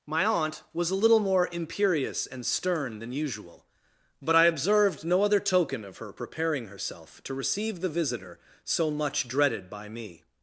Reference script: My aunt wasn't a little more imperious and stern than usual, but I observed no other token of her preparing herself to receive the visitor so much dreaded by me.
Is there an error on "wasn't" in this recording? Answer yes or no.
yes